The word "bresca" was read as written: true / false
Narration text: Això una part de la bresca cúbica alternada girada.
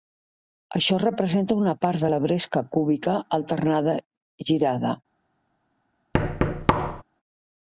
true